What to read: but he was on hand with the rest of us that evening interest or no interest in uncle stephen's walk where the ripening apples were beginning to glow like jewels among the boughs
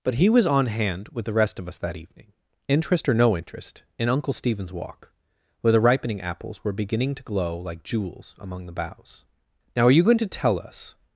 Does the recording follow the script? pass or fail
fail